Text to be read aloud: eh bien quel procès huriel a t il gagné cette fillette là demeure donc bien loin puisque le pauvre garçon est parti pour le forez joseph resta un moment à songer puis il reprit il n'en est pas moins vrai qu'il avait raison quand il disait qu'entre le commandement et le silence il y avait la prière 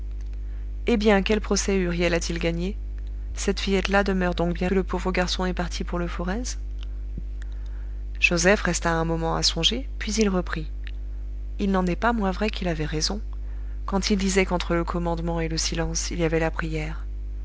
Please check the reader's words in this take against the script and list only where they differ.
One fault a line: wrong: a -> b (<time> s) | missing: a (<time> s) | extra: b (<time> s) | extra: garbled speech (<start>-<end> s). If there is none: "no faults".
missing: loin puisque (4.7 s)